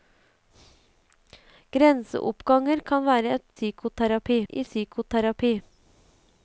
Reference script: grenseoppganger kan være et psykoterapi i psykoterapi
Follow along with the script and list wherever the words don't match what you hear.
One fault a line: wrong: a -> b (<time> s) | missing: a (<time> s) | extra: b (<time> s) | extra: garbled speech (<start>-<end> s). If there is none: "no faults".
no faults